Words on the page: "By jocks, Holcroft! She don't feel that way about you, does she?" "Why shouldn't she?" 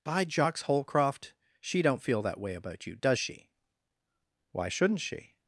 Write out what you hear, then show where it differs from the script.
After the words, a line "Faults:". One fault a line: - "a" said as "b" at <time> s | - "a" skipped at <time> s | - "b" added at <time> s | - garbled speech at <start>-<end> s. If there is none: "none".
"By jocks, Holcroft! She don't feel that way about you, does she?" "Why shouldn't she?"
Faults:
none